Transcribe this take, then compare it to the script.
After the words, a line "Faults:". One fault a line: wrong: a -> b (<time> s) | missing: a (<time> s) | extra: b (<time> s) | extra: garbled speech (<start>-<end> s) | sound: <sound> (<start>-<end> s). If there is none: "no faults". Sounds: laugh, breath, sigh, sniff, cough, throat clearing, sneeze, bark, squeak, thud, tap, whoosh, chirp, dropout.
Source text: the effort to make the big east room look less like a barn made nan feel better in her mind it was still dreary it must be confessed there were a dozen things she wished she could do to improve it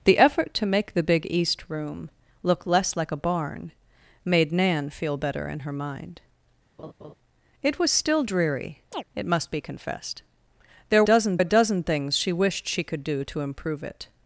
the effort to make the big east room look less like a barn made nan feel better in her mind it was still dreary it must be confessed there dozen a dozen things she wished she could do to improve it
Faults:
sound: laugh (6.8-7.1 s)
sound: chirp (8.9-9.0 s)
wrong: were -> dozen (11.0 s)